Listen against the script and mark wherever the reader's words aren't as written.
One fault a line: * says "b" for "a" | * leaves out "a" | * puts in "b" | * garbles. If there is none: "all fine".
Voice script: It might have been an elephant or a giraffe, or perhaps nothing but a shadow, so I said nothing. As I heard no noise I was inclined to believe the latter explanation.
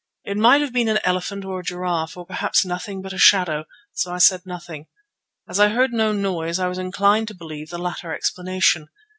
all fine